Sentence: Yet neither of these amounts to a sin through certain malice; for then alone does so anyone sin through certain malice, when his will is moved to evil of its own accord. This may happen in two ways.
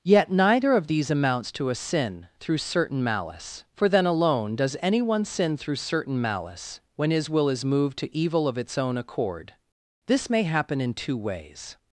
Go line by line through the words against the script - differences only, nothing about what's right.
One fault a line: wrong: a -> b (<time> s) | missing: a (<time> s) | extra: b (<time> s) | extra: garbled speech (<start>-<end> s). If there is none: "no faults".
missing: so (4.8 s)